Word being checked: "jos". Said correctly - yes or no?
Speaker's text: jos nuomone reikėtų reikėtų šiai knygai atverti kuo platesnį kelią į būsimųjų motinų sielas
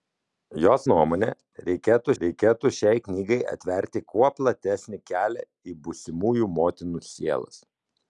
yes